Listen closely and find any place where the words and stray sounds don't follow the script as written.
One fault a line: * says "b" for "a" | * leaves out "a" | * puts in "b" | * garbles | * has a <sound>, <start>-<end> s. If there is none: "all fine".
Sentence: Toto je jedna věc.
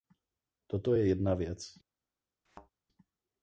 * has a thud, 2.5-2.7 s